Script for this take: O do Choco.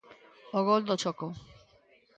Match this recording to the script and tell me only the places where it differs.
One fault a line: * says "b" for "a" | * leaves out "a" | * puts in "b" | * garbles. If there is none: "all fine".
* puts in "gol"